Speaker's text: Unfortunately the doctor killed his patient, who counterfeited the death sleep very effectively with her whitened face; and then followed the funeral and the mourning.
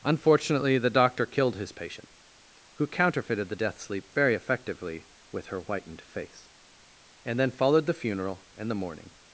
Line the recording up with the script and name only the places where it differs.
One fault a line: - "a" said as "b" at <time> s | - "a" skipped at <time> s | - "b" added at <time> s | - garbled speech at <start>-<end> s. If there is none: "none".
none